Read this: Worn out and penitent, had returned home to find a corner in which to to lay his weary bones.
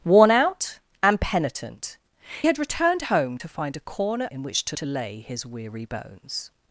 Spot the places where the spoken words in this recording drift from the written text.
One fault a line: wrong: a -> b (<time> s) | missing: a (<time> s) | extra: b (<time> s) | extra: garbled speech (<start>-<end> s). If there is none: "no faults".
no faults